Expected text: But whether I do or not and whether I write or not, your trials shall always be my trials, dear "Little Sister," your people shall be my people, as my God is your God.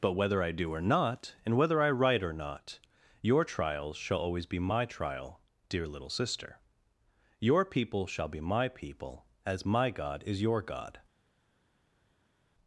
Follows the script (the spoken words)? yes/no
no